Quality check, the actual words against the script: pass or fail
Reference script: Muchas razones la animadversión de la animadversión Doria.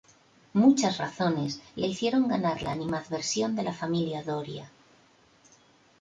fail